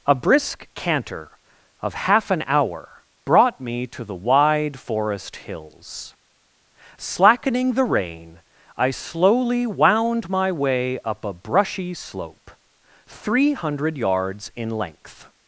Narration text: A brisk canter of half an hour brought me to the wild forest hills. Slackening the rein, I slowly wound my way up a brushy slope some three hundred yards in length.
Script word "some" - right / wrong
wrong